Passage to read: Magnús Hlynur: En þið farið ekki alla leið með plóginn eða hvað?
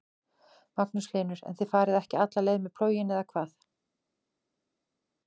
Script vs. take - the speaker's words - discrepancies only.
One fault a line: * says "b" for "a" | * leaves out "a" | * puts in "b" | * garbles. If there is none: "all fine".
all fine